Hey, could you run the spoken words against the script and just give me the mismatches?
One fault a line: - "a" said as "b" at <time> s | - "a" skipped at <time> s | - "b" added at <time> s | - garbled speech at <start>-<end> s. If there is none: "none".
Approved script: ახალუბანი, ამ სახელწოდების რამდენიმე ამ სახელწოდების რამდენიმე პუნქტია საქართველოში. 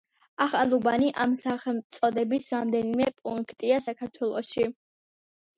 - "ამ სახელწოდების რამდენიმე" skipped at 3.1 s